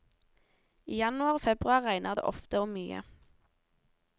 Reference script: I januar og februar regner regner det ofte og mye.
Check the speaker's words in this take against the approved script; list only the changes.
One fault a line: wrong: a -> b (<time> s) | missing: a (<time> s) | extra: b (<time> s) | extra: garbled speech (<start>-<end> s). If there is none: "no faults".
missing: regner (2.2 s)